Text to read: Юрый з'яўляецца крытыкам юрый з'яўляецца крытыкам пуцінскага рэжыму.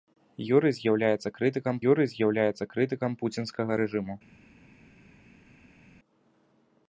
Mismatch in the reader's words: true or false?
false